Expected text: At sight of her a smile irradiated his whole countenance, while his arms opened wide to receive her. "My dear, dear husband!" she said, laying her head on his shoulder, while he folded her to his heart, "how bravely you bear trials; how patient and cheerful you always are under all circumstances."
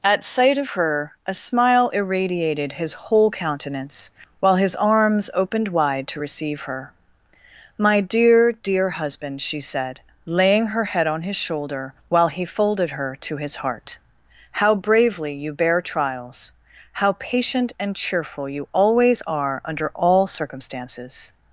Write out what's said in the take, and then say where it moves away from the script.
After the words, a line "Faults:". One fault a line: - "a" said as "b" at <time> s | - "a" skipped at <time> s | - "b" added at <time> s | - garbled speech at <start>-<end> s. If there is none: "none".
At sight of her a smile irradiated his whole countenance, while his arms opened wide to receive her. "My dear, dear husband!" she said, laying her head on his shoulder, while he folded her to his heart, "how bravely you bear trials; how patient and cheerful you always are under all circumstances."
Faults:
none